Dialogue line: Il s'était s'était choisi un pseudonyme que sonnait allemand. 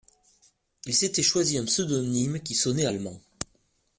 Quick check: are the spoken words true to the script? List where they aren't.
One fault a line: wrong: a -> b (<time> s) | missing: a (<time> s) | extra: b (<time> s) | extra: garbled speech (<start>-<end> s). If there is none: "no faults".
missing: s'était (1.2 s)
wrong: que -> qui (2.4 s)